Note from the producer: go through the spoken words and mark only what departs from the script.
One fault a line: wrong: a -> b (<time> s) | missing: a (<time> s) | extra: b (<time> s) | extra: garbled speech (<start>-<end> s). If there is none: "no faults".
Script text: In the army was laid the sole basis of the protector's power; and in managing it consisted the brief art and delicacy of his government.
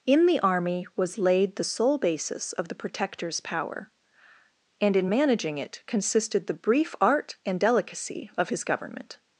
no faults